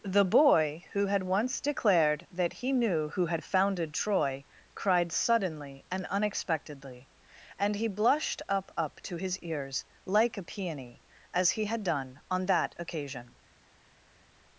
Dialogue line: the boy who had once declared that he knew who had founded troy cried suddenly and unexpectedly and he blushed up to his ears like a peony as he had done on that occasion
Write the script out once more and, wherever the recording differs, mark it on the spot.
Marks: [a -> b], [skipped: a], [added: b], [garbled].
the boy who had once declared that he knew who had founded troy cried suddenly and unexpectedly and he blushed up [added: up] to his ears like a peony as he had done on that occasion